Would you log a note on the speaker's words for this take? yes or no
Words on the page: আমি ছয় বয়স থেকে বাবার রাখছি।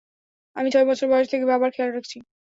yes